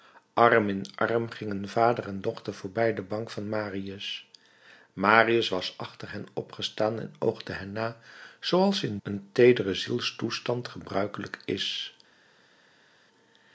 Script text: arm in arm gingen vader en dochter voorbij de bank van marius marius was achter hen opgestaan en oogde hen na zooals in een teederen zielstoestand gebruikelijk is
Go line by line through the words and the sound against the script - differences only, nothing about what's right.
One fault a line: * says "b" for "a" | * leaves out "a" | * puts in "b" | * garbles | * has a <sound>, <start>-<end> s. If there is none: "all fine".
all fine